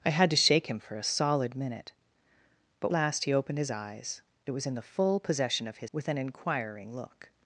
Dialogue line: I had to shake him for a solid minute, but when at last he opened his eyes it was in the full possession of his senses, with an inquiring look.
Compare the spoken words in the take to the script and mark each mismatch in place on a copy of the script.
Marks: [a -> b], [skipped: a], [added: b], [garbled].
I had to shake him for a solid minute, but [skipped: when at] last he opened his eyes it was in the full possession of his [skipped: senses,] with an inquiring look.